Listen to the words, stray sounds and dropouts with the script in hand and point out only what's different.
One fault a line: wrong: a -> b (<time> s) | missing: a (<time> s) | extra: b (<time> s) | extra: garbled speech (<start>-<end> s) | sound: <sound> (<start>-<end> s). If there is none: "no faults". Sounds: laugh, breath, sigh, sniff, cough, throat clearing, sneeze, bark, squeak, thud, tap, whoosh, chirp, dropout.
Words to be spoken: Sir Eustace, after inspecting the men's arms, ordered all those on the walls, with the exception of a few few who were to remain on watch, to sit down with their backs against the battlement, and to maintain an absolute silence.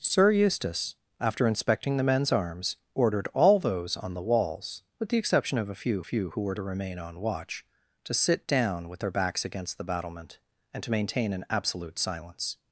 no faults